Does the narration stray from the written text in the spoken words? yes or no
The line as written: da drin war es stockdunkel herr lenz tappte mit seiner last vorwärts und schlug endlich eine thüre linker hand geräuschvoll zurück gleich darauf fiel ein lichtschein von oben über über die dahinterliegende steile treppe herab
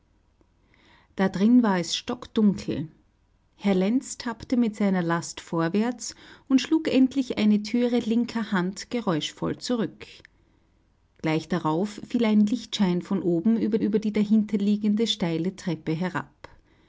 no